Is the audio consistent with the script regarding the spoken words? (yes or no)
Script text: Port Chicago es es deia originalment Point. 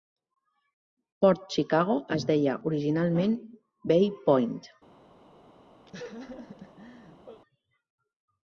no